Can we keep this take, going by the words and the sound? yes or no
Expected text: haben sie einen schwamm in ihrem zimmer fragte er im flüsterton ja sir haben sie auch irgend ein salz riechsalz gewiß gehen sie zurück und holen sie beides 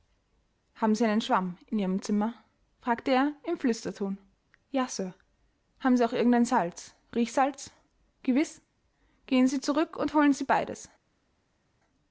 yes